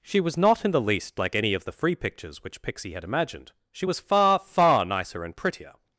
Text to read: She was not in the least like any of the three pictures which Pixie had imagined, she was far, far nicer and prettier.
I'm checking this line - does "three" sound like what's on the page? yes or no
no